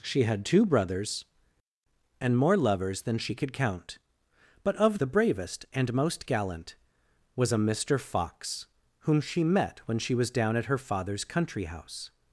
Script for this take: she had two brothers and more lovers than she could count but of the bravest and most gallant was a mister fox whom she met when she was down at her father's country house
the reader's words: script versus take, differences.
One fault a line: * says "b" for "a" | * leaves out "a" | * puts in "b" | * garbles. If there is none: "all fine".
all fine